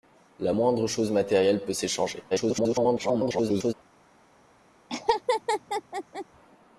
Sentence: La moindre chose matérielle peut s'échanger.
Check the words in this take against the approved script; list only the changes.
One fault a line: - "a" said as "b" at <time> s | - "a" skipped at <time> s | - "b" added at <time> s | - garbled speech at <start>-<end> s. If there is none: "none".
- garbled speech at 2.3-3.7 s